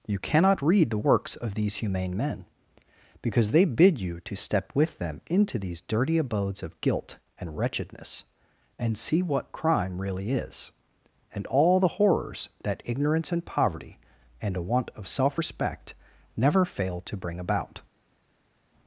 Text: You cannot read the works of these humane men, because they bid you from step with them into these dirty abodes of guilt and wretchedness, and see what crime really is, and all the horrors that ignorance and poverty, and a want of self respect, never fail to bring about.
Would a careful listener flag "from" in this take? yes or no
yes